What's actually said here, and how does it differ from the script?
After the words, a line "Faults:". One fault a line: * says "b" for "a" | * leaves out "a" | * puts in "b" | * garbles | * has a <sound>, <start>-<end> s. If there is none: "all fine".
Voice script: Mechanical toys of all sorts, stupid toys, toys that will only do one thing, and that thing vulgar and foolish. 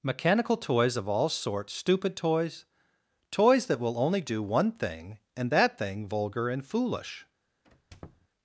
Mechanical toys of all sorts, stupid toys, toys that will only do one thing, and that thing vulgar and foolish.
Faults:
* has a squeak, 7.6-8.3 s